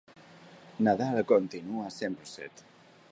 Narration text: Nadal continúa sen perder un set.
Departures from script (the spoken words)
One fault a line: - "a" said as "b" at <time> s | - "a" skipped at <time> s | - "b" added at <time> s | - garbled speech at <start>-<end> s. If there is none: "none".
- "perder" skipped at 2.1 s